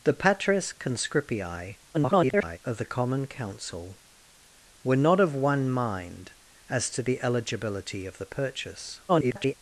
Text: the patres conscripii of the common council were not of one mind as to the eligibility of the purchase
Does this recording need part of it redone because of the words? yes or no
yes